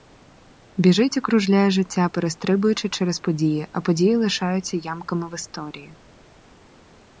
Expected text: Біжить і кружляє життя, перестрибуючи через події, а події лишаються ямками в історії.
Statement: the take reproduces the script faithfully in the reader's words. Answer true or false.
true